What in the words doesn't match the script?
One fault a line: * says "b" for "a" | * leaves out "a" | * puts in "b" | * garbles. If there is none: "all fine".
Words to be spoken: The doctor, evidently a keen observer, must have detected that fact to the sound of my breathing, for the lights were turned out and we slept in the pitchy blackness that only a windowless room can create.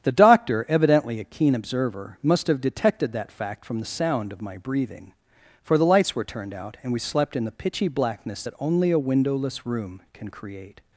* says "from" for "to"